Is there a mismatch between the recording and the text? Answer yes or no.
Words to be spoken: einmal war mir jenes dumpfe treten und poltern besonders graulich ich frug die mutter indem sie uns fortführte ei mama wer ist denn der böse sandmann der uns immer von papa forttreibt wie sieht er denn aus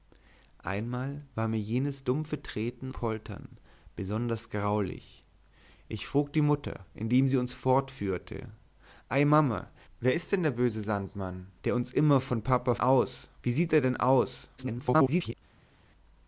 yes